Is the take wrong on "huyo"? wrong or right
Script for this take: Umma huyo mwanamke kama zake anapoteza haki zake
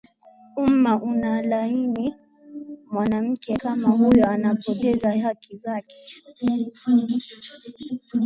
wrong